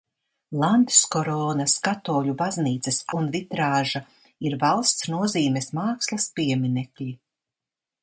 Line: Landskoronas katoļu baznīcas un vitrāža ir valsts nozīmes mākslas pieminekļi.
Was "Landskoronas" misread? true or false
false